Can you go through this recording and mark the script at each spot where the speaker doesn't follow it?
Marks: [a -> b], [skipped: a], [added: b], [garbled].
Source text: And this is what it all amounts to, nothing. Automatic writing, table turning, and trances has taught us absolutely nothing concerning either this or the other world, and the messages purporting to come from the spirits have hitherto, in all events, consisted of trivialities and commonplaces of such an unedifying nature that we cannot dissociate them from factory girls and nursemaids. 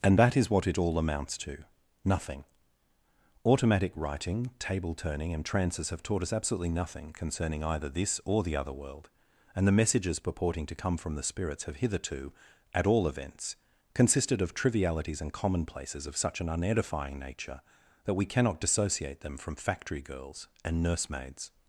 And [this -> that] is what it all amounts to, nothing. Automatic writing, table turning, and trances [has -> have] taught us absolutely nothing concerning either this or the other world, and the messages purporting to come from the spirits have hitherto, [in -> at] all events, consisted of trivialities and commonplaces of such an unedifying nature that we cannot dissociate them from factory girls and nursemaids.